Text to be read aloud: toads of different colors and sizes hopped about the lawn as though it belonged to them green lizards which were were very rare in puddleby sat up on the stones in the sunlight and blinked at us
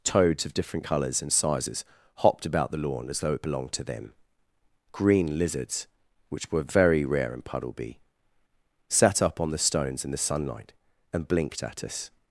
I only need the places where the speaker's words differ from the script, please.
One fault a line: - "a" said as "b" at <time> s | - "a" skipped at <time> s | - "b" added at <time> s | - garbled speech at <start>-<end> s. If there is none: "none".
- "were" skipped at 6.6 s